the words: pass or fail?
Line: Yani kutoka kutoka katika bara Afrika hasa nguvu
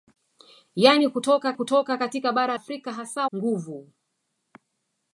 pass